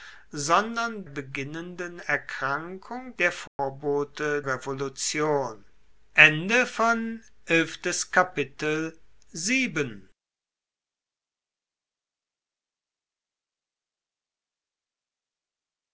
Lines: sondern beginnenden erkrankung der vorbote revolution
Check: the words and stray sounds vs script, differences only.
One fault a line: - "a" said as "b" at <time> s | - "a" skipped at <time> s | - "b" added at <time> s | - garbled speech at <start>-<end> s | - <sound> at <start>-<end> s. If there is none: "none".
- dropout at 3.5-3.6 s